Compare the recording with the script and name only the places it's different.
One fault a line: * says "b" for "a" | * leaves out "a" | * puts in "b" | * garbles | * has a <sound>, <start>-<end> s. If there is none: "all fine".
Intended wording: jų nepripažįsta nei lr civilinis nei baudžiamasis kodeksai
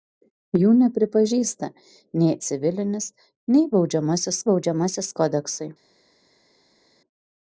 * leaves out "lr"
* puts in "baudžiamasis"